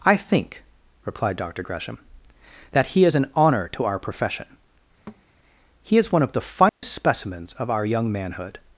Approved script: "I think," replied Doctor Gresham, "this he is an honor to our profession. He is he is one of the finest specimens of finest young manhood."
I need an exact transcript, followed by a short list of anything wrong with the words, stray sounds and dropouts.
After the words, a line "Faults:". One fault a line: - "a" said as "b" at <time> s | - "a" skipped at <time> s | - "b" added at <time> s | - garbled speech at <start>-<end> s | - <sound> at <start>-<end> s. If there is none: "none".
"I think," replied Doctor Gresham, "that he is an honor to our profession. He is one of the finest specimens of our young manhood."
Faults:
- "this" said as "that" at 2.7 s
- thud at 5.1-5.3 s
- "he is" skipped at 6.1 s
- dropout at 6.7-6.8 s
- "finest" said as "our" at 7.7 s